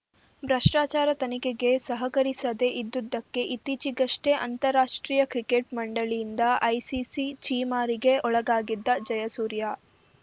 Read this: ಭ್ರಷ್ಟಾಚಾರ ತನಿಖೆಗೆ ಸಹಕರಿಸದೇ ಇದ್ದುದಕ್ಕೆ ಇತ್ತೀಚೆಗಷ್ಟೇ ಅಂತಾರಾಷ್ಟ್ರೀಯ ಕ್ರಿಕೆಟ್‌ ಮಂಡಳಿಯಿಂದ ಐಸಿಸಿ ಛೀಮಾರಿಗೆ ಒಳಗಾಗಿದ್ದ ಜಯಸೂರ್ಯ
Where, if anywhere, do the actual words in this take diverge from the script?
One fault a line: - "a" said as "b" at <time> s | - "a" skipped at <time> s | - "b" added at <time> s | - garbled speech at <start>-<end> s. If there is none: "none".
none